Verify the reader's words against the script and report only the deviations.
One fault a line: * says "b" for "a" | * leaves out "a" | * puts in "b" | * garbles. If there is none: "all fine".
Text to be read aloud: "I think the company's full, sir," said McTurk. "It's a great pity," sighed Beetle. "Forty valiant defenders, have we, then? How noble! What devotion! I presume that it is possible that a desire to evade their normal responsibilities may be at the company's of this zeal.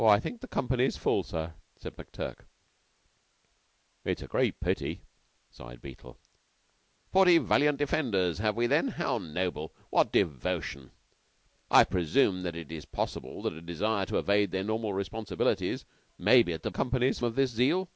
all fine